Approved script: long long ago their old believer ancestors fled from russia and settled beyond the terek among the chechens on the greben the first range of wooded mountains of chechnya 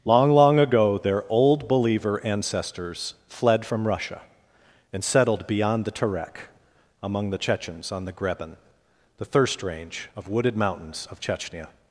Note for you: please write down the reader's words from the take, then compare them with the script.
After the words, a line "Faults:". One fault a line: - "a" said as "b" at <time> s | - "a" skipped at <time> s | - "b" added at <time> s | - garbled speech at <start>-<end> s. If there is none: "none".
long long ago their old believer ancestors fled from russia and settled beyond the terek among the chechens on the greben the thirst range of wooded mountains of chechnya
Faults:
- "first" said as "thirst" at 9.2 s